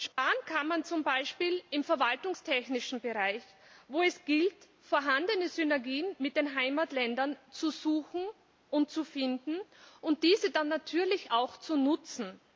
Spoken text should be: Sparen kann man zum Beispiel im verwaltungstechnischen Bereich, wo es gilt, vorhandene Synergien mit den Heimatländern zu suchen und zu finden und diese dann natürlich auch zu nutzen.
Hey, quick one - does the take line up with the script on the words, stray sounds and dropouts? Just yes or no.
no